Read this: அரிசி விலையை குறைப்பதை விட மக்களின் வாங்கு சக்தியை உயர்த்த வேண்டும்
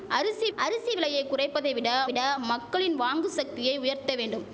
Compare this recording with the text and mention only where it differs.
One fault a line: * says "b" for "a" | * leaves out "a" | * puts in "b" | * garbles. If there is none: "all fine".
* puts in "அரிசி"
* puts in "விட"